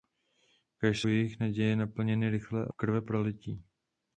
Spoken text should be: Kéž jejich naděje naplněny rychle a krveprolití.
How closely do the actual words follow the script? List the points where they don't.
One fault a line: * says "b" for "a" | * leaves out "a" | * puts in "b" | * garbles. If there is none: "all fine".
all fine